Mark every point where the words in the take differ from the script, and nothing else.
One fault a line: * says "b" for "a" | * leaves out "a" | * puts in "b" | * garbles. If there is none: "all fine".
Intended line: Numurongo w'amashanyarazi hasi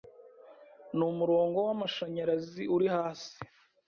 * puts in "uri"